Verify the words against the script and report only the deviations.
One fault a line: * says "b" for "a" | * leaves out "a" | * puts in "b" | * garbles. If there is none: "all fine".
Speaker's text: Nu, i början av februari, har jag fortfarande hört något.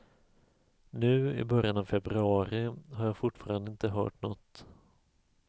* puts in "inte"